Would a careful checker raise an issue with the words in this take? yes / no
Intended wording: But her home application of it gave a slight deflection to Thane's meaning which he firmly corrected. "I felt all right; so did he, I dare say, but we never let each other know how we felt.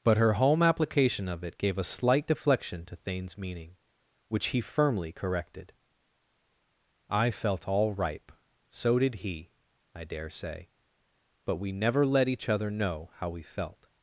yes